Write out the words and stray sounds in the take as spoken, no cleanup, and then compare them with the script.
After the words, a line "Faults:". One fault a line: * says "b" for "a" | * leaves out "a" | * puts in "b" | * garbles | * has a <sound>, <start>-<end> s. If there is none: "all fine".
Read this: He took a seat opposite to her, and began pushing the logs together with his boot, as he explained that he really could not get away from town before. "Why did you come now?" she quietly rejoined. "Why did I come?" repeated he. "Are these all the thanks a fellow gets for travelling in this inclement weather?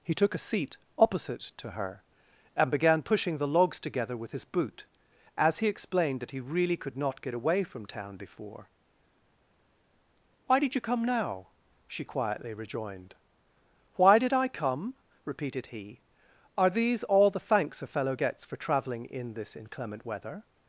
He took a seat opposite to her, and began pushing the logs together with his boot, as he explained that he really could not get away from town before. "Why did you come now?" she quietly rejoined. "Why did I come?" repeated he. "Are these all the thanks a fellow gets for travelling in this inclement weather?
Faults:
all fine